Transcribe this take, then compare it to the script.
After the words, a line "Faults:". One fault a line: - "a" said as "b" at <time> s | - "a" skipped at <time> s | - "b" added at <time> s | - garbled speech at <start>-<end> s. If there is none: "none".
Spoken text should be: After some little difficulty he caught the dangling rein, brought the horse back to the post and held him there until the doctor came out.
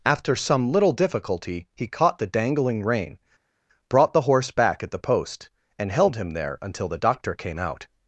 After some little difficulty he caught the dangling rein, brought the horse back at the post and held him there until the doctor came out.
Faults:
- "to" said as "at" at 4.8 s